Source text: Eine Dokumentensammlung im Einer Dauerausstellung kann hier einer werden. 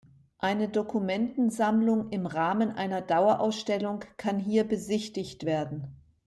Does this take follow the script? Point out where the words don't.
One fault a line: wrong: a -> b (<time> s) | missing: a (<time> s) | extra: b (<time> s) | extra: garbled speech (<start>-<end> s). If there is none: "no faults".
extra: Rahmen (2.2 s)
wrong: einer -> besichtigt (4.6 s)